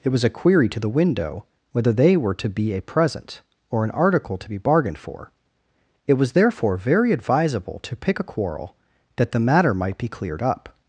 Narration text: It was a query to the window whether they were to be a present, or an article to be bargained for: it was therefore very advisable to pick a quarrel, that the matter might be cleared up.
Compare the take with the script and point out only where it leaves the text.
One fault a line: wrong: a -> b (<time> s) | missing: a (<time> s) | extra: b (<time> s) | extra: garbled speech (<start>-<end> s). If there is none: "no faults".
no faults